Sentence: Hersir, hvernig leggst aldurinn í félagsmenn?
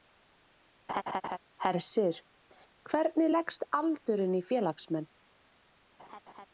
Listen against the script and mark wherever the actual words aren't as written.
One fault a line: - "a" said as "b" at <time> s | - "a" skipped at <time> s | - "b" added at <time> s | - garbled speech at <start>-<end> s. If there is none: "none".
none